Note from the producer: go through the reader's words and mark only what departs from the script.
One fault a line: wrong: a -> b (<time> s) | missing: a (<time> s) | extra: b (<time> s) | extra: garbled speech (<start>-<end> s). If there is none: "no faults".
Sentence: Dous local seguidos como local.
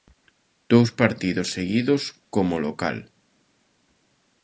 wrong: local -> partidos (1.0 s)